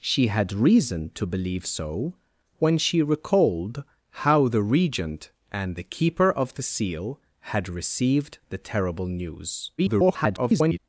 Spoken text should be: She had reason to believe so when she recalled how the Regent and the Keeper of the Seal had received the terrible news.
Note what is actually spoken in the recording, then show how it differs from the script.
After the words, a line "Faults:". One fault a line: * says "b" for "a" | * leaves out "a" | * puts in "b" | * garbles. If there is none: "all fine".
She had reason to believe so when she recalled how the Regent and the Keeper of the Seal had received the terrible news. [garbled]
Faults:
* garbles